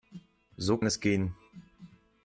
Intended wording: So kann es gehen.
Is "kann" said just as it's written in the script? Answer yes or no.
no